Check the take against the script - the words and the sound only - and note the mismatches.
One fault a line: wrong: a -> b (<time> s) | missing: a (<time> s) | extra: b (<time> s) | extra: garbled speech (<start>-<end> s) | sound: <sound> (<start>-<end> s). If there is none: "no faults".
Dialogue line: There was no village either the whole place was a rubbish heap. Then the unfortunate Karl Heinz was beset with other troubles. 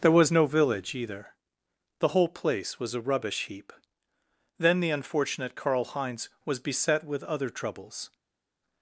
no faults